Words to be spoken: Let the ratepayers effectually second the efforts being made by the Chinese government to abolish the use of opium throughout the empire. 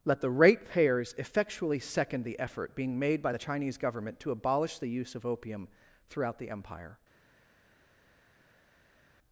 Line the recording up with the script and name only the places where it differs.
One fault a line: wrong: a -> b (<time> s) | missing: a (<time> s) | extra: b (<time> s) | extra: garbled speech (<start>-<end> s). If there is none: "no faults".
wrong: efforts -> effort (2.4 s)